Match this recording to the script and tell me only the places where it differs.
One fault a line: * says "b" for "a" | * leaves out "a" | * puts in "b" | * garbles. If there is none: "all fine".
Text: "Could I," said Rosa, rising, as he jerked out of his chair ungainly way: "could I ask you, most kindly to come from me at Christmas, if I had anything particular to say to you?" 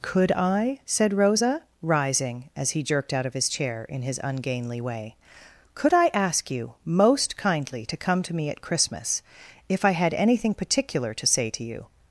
* puts in "in his"
* says "to" for "from"